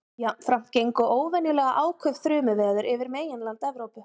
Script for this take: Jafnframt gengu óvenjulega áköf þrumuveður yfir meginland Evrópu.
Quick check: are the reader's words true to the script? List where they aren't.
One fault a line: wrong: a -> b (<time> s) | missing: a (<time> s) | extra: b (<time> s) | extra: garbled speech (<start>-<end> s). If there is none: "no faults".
no faults